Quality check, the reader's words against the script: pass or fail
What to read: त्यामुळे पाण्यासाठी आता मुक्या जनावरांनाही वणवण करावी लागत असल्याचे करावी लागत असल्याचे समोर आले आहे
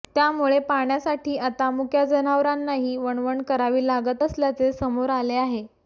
fail